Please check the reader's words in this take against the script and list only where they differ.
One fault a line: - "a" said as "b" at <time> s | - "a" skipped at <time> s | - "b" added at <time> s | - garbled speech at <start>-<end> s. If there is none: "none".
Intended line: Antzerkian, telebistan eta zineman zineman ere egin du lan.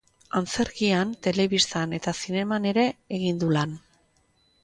- "zineman" skipped at 2.6 s